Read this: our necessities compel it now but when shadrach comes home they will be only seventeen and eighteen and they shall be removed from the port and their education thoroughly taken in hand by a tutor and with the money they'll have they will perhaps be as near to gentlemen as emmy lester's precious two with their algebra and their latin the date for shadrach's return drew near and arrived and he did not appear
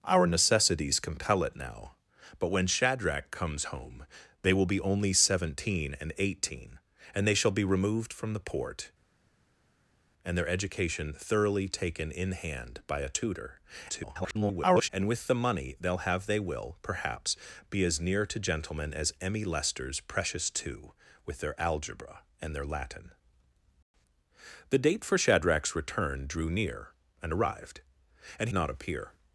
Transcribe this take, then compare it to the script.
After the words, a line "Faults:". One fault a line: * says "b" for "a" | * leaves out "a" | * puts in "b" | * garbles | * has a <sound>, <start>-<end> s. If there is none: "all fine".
our necessities compel it now but when shadrach comes home they will be only seventeen and eighteen and they shall be removed from the port and their education thoroughly taken in hand by a tutor [garbled] and with the money they'll have they will perhaps be as near to gentlemen as emmy lester's precious two with their algebra and their latin the date for shadrach's return drew near and arrived and not appear
Faults:
* garbles
* leaves out "he did"